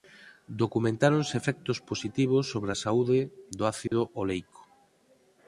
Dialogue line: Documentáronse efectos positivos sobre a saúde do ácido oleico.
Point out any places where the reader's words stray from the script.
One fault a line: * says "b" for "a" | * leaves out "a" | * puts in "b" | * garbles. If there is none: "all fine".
all fine